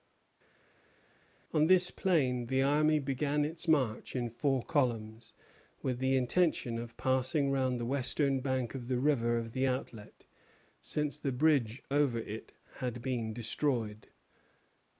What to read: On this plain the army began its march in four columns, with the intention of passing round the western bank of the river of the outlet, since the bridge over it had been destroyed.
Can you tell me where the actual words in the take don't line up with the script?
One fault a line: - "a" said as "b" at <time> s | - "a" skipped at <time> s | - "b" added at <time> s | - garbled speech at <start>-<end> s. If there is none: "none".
none